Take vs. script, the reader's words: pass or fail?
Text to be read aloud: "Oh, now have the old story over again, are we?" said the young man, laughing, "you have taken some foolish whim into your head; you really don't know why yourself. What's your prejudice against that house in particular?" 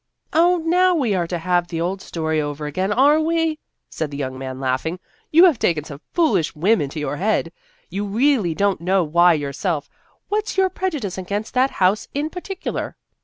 fail